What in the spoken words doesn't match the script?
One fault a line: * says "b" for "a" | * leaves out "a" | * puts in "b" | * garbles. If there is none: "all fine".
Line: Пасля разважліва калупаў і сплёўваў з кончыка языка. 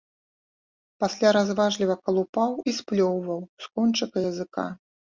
all fine